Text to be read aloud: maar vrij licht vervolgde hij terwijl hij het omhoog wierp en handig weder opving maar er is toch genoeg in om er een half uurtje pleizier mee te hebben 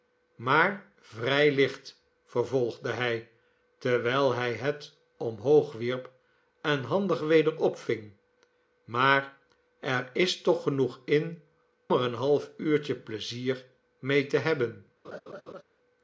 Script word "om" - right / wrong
wrong